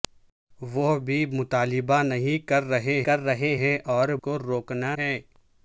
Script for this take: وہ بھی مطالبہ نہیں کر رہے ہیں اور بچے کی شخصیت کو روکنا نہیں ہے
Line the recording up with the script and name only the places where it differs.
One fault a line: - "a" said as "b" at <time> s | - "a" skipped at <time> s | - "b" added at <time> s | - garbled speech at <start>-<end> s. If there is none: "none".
- "کر رہے" added at 3.0 s
- "بچے کی شخصیت" skipped at 4.1 s
- "نہیں" skipped at 4.9 s